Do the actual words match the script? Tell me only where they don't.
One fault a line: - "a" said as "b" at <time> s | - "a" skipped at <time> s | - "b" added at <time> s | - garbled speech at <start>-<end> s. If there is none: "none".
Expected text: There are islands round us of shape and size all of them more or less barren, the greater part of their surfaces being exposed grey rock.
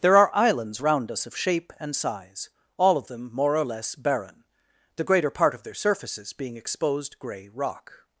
none